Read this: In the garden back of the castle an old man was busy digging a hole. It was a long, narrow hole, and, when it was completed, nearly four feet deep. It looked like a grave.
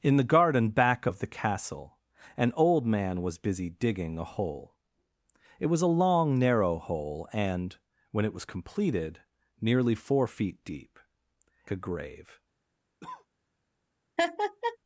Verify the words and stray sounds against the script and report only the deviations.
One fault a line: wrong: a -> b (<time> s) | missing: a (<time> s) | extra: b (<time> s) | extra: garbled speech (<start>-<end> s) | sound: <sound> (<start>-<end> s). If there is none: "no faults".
missing: It looked like (11.0 s)
sound: cough (13.0-13.3 s)
sound: laugh (14.2-14.8 s)